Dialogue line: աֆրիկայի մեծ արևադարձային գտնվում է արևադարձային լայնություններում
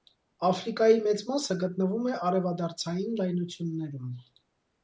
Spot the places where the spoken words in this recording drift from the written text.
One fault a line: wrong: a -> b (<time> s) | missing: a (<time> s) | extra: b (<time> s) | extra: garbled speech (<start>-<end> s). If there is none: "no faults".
wrong: արևադարձային -> մասը (1.3 s)